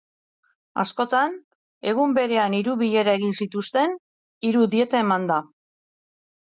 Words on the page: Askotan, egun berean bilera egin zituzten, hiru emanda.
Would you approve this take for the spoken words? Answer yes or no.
no